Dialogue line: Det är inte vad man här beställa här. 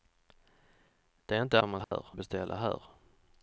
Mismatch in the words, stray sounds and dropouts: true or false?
true